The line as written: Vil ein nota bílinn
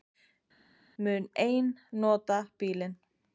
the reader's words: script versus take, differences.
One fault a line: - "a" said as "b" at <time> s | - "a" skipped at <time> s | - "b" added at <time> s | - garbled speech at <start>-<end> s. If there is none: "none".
- "Vil" said as "Mun" at 1.0 s